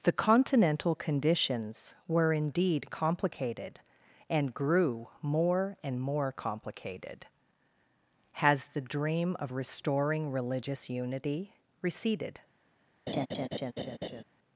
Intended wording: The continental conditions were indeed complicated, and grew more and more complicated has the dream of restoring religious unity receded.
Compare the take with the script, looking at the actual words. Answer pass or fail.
pass